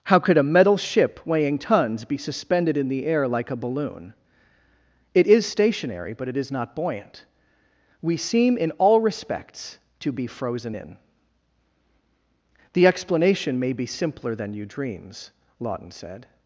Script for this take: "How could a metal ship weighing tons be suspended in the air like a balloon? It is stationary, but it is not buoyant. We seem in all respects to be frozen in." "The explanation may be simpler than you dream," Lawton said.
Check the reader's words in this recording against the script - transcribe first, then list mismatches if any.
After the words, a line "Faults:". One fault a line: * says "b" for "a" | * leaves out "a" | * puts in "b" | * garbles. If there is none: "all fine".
"How could a metal ship weighing tons be suspended in the air like a balloon? It is stationary, but it is not buoyant. We seem in all respects to be frozen in." "The explanation may be simpler than you dreams," Lawton said.
Faults:
* says "dreams" for "dream"